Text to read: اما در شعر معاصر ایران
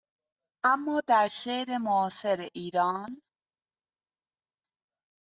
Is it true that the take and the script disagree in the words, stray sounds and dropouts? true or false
false